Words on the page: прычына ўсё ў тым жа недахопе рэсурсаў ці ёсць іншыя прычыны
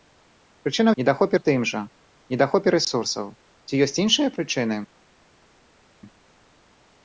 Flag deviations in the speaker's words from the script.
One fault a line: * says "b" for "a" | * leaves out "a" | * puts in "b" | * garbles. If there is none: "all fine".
* says "недахопе" for "ўсё"